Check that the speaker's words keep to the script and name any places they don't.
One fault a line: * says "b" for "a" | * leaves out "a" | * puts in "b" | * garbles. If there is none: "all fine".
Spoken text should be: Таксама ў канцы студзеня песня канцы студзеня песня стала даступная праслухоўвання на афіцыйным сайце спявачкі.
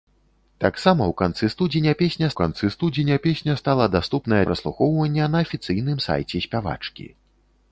all fine